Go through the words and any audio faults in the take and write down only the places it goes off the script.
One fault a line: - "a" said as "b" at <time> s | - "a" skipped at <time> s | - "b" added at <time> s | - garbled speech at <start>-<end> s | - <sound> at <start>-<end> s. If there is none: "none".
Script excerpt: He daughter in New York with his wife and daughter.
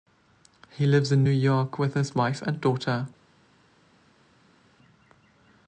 - "daughter" said as "lives" at 0.9 s